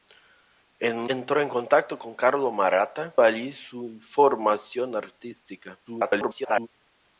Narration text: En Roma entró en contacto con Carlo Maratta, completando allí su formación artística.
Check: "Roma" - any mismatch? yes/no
yes